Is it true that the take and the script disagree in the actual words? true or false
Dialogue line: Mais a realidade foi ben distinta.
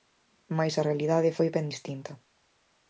false